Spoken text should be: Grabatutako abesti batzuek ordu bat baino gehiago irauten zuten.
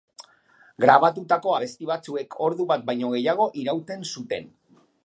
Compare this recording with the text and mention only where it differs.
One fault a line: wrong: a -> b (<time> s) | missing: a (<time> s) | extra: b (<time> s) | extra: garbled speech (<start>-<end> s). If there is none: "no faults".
no faults